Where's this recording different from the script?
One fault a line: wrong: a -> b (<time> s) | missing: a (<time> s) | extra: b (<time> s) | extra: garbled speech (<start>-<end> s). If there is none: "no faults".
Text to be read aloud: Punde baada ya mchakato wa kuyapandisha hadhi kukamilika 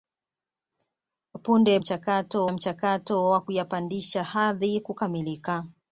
wrong: baada -> mchakato (1.8 s)